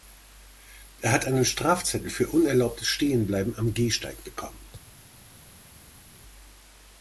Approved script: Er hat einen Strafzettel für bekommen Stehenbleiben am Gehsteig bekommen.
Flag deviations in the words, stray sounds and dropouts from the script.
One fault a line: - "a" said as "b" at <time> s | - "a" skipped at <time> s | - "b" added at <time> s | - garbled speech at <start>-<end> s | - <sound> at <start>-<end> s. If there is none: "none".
- "bekommen" said as "unerlaubtes" at 2.3 s